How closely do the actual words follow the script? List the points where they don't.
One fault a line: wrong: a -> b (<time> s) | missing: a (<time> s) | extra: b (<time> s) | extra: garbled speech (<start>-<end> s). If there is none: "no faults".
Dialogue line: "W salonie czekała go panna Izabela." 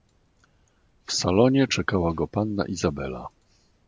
no faults